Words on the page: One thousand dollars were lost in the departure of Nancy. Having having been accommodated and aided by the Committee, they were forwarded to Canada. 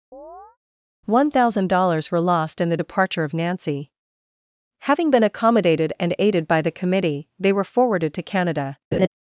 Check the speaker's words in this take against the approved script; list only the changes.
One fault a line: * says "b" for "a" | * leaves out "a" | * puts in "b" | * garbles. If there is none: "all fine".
* leaves out "having"